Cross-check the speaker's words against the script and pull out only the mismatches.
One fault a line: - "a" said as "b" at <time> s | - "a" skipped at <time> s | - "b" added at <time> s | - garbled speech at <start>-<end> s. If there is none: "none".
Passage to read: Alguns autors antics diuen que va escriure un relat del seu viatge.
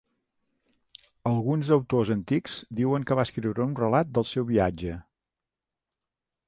none